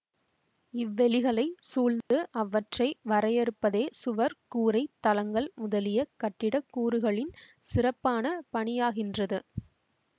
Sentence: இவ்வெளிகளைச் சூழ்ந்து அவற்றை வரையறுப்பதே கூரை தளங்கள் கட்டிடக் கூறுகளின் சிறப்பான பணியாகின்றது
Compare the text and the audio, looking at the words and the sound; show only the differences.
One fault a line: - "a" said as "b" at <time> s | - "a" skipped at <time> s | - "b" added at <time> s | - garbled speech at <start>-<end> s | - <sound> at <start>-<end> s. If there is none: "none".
- dropout at 2.0-2.1 s
- "சுவர்" added at 3.9 s
- "முதலிய" added at 5.6 s